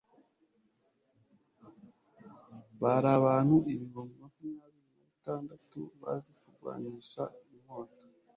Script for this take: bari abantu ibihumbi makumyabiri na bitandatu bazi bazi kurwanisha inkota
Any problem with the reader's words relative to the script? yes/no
yes